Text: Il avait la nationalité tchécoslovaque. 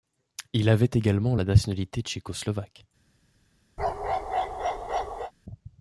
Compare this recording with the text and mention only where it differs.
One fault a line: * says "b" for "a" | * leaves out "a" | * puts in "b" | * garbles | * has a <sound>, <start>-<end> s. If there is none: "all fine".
* puts in "également"
* has a bark, 3.8-5.3 s